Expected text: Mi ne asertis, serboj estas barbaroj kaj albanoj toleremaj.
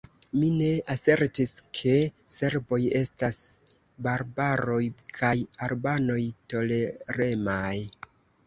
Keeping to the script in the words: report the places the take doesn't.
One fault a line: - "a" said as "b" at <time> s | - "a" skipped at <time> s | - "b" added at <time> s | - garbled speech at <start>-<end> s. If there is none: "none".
- "ke" added at 1.8 s